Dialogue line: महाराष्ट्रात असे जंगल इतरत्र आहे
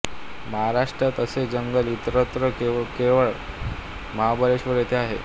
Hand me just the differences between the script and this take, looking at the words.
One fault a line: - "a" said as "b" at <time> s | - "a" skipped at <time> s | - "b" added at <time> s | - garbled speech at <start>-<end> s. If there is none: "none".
- "केवळ महाबळेश्वर येथे" added at 2.6 s